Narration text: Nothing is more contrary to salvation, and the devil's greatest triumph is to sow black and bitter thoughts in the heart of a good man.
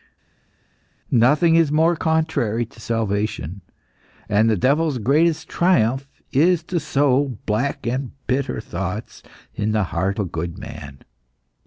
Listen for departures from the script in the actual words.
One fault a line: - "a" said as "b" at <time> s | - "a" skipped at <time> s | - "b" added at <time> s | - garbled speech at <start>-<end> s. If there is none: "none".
- "of" skipped at 10.2 s